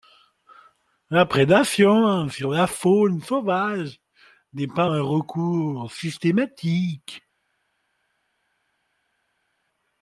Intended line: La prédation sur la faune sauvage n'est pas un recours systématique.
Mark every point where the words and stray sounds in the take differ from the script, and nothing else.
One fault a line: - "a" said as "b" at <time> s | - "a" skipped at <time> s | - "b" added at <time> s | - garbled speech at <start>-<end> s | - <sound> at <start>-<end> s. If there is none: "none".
none